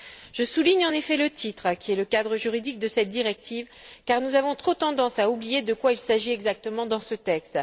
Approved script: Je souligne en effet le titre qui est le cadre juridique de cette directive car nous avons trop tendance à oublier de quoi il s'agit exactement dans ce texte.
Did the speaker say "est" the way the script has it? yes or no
yes